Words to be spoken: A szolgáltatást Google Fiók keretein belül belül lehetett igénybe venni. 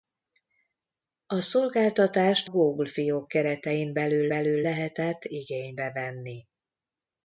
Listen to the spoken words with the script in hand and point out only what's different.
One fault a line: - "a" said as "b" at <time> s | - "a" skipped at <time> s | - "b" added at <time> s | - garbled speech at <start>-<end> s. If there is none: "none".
none